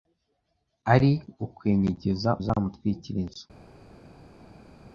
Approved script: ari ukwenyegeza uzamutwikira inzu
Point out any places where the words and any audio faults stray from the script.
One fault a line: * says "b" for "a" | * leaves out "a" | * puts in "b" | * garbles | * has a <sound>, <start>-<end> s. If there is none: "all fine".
all fine